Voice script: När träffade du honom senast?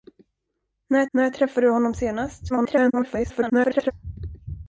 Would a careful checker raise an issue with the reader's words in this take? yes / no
yes